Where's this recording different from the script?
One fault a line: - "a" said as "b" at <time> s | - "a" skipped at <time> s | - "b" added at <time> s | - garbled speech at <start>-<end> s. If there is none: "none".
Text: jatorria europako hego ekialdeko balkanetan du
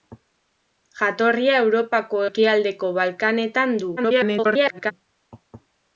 - "hego" skipped at 2.2 s
- garbled speech at 4.0-4.9 s